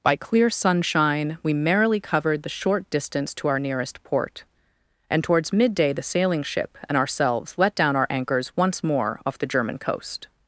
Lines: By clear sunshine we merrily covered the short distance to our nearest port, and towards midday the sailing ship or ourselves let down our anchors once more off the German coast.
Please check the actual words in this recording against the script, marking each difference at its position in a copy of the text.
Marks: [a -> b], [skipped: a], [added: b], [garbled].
By clear sunshine we merrily covered the short distance to our nearest port, and towards midday the sailing ship [or -> and] ourselves let down our anchors once more off the German coast.